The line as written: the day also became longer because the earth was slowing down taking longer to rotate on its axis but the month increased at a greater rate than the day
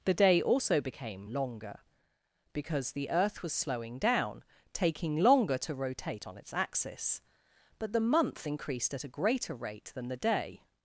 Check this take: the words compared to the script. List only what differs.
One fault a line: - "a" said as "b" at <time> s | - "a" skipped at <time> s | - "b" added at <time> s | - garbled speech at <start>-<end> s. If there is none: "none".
none